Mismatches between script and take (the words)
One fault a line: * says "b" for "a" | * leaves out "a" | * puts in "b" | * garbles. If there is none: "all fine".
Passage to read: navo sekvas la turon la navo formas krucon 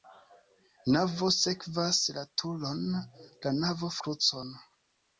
* leaves out "formas"